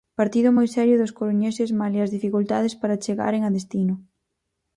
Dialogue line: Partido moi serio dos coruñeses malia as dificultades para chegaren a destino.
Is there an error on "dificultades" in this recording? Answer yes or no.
no